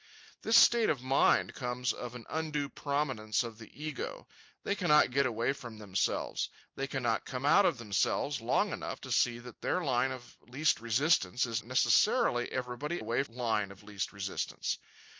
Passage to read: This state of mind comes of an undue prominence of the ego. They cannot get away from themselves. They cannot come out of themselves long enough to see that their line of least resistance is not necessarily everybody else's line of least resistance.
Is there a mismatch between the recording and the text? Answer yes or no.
yes